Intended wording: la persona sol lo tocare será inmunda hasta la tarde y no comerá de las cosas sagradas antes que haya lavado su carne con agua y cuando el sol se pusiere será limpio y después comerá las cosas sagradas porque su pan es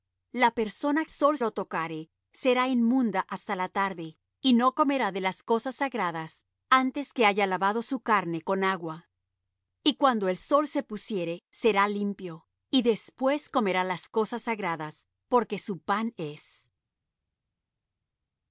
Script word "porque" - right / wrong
right